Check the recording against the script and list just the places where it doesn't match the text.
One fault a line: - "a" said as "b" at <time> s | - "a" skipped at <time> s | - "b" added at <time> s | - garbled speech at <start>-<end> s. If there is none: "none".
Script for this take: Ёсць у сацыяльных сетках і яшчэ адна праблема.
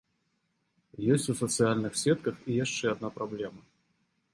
none